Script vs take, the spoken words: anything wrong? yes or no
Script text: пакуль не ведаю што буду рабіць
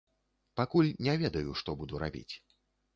no